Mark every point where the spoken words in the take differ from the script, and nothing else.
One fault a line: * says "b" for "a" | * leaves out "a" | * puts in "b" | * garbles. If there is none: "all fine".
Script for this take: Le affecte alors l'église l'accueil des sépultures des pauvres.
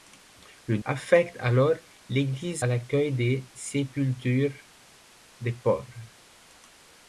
all fine